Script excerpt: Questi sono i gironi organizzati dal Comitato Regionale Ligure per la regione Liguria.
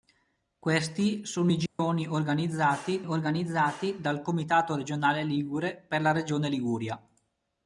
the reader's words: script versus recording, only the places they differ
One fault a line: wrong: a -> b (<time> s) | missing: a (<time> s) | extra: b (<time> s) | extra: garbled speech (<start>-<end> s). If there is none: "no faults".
extra: organizzati (3.1 s)